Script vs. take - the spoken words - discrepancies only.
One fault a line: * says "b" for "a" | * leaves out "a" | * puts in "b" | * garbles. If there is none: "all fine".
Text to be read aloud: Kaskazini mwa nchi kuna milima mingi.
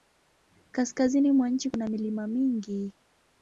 all fine